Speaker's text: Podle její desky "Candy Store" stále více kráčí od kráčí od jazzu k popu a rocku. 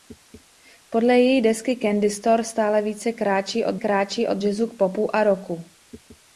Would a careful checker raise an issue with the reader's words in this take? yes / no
no